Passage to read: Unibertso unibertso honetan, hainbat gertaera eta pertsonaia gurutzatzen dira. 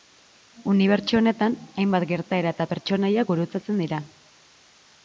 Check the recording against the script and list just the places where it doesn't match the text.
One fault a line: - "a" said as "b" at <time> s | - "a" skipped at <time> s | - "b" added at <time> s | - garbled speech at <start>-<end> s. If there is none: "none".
- "unibertso" skipped at 1.2 s